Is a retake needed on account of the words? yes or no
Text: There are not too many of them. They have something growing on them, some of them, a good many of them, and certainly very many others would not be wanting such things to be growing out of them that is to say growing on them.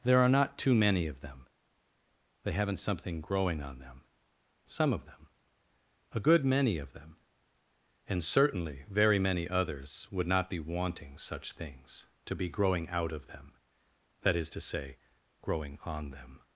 yes